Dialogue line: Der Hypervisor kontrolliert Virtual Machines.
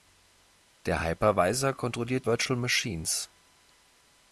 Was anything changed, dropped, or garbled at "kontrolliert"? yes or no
no